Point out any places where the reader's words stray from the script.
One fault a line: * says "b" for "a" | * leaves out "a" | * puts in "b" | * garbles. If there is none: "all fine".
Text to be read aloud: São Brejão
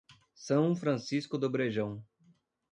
* puts in "Francisco do"